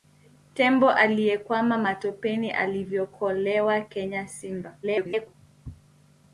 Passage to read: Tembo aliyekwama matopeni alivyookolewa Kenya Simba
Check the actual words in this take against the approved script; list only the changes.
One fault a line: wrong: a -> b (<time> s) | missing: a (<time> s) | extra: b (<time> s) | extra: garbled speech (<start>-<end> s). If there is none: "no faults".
extra: garbled speech (4.8-5.3 s)